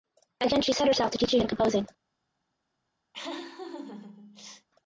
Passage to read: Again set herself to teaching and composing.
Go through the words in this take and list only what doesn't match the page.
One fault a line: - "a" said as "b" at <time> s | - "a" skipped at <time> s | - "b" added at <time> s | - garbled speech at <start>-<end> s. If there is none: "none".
- "she" added at 0.6 s